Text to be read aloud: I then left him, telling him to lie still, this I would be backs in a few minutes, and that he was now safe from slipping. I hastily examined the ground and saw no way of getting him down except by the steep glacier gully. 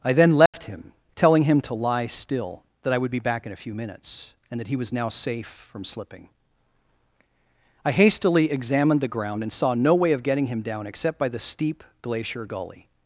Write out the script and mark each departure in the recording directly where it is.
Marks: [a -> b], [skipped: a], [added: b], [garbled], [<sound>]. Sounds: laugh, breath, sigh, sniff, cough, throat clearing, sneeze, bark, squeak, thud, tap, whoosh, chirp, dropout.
I then left [dropout] him, telling him to lie still, [this -> that] I would be [backs -> back] in a few minutes, and that he was now safe from slipping. I hastily examined the ground and saw no way of getting him down except by the steep glacier gully.